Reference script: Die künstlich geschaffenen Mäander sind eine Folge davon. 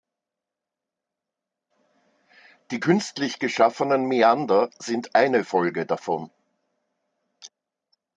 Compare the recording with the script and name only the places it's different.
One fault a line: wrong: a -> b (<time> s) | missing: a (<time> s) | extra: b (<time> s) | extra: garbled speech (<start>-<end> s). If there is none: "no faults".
no faults